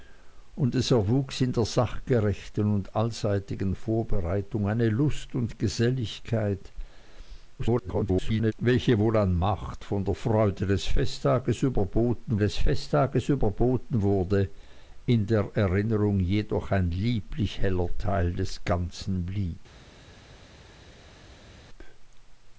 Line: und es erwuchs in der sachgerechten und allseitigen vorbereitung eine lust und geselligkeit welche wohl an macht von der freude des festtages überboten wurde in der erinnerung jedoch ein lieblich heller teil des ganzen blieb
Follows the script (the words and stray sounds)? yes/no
no